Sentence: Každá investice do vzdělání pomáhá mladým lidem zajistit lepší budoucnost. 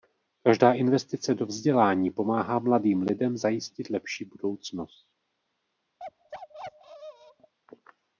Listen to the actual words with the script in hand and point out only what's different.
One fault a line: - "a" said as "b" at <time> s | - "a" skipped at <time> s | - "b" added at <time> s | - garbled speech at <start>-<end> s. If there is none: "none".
none